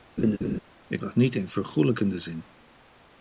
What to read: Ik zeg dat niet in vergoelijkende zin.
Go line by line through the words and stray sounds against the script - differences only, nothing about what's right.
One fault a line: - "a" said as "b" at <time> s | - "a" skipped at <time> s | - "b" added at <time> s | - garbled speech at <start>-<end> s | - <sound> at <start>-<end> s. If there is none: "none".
- laugh at 0.2-0.6 s
- "zeg" skipped at 1.0 s